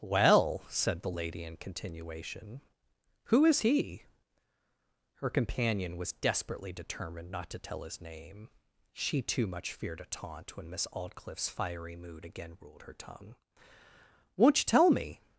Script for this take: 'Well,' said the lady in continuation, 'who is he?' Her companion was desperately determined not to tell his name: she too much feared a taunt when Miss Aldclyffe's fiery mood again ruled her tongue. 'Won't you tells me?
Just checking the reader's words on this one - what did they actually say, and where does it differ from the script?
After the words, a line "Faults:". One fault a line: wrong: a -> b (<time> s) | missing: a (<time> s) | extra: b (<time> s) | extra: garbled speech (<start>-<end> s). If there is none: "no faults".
'Well,' said the lady in continuation, 'who is he?' Her companion was desperately determined not to tell his name: she too much feared a taunt when Miss Aldclyffe's fiery mood again ruled her tongue. 'Won't you tell me?
Faults:
wrong: tells -> tell (14.6 s)